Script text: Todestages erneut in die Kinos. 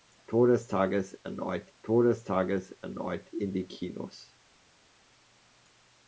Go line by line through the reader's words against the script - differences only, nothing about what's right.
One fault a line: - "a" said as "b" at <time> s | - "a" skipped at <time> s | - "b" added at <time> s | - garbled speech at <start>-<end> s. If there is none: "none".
- "todestages erneut" added at 1.8 s